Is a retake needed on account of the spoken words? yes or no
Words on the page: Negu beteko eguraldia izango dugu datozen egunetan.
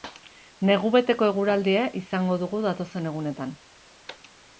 no